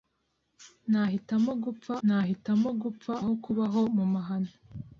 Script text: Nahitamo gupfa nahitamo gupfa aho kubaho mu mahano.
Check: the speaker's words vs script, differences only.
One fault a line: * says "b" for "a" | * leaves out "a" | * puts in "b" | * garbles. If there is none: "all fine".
all fine